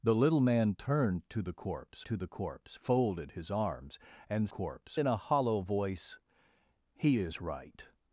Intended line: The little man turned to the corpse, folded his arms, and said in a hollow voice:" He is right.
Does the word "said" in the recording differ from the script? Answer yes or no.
yes